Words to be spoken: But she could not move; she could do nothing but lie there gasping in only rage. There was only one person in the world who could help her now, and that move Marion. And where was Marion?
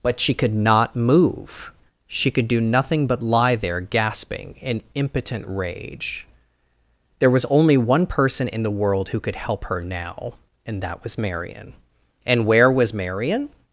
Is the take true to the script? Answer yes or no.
no